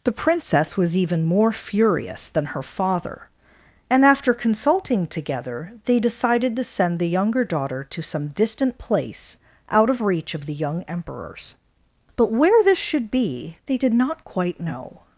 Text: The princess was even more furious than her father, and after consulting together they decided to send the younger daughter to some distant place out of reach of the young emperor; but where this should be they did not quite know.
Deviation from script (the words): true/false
true